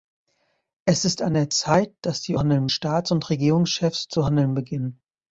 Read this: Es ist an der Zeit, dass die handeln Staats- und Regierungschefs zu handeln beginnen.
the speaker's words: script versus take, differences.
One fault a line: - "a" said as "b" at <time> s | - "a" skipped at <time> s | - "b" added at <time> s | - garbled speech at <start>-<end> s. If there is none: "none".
none